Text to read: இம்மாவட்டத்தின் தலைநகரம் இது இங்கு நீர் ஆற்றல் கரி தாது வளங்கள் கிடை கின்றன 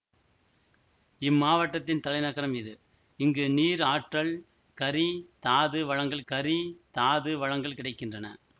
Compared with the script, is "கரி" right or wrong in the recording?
right